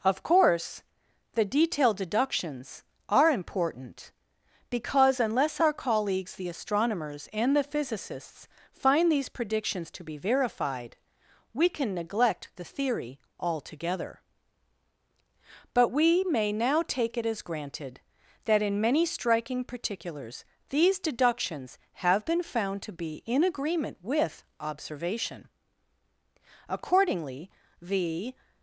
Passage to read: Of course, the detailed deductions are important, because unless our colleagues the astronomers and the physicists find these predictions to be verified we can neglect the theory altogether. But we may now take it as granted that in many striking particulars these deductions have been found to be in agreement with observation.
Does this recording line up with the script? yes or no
no